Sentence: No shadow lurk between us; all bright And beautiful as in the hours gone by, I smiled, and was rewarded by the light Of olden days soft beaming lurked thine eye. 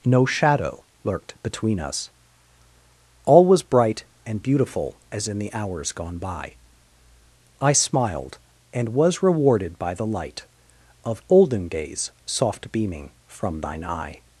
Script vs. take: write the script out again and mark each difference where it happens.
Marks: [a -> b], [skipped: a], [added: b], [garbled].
No shadow [lurk -> lurked] between us; all [added: was] bright And beautiful as in the hours gone by, I smiled, and was rewarded by the light Of olden days soft beaming [lurked -> from] thine eye.